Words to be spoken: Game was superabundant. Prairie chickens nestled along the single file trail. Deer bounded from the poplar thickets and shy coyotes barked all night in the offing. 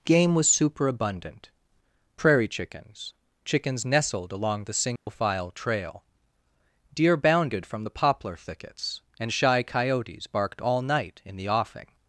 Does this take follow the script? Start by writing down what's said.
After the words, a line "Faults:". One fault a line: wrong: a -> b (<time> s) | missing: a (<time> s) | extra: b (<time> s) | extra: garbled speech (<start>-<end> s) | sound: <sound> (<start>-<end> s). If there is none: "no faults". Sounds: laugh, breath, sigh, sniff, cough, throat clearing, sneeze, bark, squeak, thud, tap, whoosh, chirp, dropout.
Game was superabundant. Prairie chickens chickens nestled along the single file trail. Deer bounded from the poplar thickets and shy coyotes barked all night in the offing.
Faults:
extra: chickens (3.5 s)
sound: dropout (5.0-5.1 s)